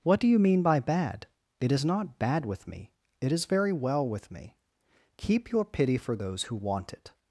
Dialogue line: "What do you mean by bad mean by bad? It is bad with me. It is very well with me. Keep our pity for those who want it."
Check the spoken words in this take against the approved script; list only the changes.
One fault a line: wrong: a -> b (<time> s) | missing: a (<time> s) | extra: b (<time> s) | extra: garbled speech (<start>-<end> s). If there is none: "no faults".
missing: mean by bad (1.3 s)
extra: not (1.9 s)
wrong: our -> your (5.5 s)